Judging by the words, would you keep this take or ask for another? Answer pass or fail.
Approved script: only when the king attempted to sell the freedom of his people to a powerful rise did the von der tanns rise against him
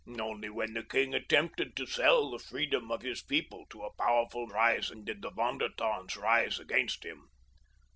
pass